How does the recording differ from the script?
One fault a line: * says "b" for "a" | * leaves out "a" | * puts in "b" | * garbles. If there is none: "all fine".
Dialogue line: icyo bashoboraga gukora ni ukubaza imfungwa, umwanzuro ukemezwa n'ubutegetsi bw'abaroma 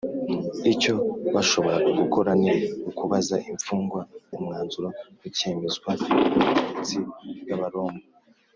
all fine